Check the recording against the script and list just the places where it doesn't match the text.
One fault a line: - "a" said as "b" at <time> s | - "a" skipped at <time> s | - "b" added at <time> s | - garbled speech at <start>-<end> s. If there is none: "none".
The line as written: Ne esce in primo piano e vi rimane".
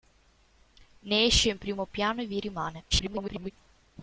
- garbled speech at 2.9-3.5 s